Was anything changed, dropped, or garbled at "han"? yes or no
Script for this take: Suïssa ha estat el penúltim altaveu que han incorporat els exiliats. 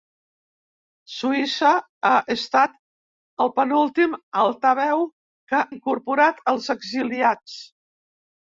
yes